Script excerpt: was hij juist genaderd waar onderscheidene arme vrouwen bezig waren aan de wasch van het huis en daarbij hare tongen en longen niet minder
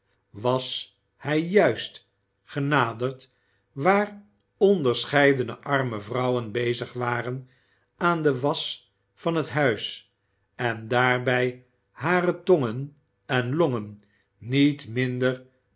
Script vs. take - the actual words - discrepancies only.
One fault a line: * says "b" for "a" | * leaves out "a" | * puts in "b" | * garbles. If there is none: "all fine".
all fine